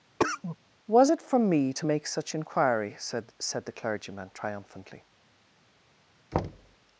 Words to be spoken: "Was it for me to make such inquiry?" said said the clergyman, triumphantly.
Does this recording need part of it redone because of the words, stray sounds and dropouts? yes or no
yes